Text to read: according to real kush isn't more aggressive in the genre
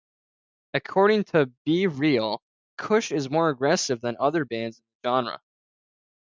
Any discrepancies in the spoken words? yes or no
yes